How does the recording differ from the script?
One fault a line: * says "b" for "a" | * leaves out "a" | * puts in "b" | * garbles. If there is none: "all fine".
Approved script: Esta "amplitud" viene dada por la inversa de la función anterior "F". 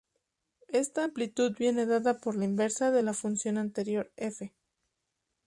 all fine